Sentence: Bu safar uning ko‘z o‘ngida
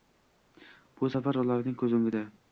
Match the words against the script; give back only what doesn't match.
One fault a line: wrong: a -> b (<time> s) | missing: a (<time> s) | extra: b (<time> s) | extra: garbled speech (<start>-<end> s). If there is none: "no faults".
wrong: uning -> ularning (1.4 s)